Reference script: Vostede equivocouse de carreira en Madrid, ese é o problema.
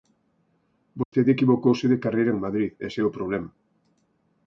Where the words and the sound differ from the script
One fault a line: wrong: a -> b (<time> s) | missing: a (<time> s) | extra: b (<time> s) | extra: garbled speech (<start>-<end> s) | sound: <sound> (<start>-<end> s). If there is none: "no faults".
sound: dropout (1.0-1.1 s)